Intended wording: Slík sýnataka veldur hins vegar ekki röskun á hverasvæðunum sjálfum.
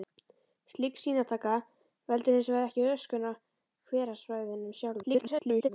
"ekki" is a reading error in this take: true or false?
false